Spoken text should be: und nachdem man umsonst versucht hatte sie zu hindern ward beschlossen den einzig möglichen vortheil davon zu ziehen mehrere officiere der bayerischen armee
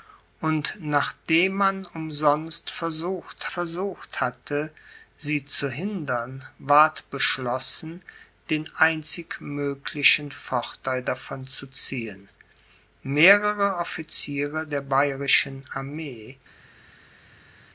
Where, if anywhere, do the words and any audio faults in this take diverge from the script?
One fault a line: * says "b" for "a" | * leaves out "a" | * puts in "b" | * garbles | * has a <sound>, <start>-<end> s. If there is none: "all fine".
* puts in "versucht"